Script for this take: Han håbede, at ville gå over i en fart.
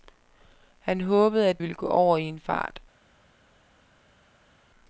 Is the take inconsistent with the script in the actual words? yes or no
no